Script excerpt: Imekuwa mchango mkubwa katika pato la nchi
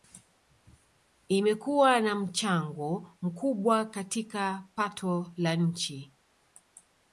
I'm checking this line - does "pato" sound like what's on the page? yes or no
yes